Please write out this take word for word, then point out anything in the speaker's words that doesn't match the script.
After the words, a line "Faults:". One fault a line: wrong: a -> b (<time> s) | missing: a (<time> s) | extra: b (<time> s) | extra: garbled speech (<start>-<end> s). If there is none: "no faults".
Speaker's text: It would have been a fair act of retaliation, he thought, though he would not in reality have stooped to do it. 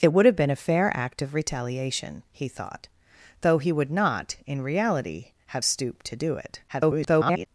It would have been a fair act of retaliation, he thought, though he would not in reality have stooped to do it. [garbled]
Faults:
extra: garbled speech (6.7-7.5 s)